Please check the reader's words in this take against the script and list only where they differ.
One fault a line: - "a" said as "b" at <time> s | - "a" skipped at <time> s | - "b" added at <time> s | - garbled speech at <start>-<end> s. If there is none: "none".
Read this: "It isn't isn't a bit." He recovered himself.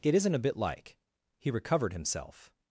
- "isn't" skipped at 0.3 s
- "like" added at 0.6 s